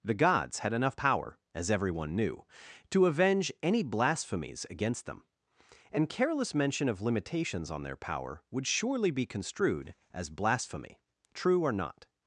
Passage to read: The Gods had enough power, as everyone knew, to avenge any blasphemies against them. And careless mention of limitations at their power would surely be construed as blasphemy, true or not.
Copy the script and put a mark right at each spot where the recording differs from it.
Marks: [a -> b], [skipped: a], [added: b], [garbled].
The Gods had enough power, as everyone knew, to avenge any blasphemies against them. And careless mention of limitations [at -> on] their power would surely be construed as blasphemy, true or not.